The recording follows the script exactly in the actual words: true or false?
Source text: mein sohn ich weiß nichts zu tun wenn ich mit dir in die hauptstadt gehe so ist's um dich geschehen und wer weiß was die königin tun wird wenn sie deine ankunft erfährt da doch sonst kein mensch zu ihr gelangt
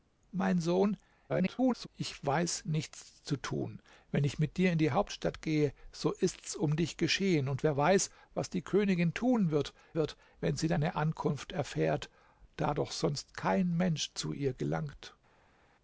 false